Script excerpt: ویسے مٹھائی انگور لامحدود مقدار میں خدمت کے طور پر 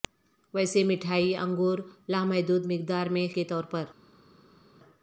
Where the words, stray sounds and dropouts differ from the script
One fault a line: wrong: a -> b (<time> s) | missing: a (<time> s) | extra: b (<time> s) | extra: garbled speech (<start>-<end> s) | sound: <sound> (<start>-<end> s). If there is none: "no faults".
missing: خدمت (3.3 s)